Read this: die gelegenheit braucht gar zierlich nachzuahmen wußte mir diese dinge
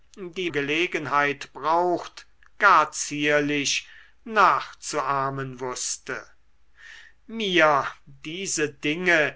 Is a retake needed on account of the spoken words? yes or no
no